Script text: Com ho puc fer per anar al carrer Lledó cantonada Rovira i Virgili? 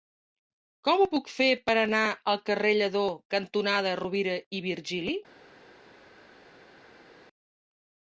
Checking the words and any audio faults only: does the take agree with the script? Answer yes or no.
yes